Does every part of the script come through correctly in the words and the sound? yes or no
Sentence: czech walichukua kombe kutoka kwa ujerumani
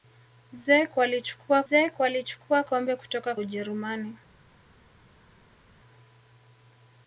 no